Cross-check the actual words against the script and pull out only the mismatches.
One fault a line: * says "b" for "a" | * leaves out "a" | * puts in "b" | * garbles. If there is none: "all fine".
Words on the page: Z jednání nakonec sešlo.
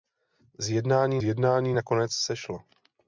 * puts in "jednání"